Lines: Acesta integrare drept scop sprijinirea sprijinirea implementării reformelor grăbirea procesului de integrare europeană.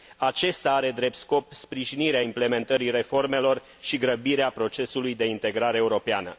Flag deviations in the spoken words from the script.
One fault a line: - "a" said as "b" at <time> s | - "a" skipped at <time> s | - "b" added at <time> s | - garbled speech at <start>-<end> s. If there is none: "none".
- "integrare" said as "are" at 0.7 s
- "sprijinirea" skipped at 2.2 s
- "și" added at 3.8 s